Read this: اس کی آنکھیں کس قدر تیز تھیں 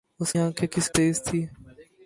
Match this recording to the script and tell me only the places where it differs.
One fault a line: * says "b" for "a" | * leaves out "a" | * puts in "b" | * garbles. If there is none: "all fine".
* leaves out "کی"
* leaves out "قدر"